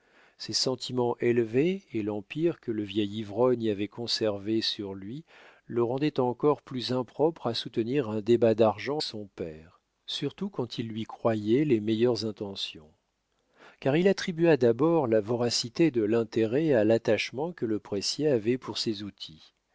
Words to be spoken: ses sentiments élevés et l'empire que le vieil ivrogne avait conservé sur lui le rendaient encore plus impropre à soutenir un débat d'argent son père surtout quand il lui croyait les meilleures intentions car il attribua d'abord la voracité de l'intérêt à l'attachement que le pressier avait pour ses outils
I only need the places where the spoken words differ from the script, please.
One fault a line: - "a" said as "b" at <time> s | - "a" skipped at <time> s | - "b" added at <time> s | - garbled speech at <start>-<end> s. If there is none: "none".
none